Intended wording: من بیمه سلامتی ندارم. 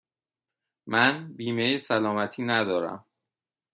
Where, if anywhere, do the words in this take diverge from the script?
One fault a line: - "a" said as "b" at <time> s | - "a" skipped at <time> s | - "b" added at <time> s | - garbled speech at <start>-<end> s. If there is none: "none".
none